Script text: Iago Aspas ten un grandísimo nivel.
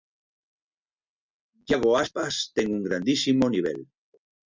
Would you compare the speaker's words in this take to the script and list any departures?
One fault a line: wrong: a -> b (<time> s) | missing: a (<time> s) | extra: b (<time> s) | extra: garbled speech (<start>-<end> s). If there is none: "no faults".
no faults